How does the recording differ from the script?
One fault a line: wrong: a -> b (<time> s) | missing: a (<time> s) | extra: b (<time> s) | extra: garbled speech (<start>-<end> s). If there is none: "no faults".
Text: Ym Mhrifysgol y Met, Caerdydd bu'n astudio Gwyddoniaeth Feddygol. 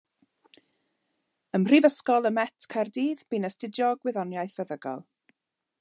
no faults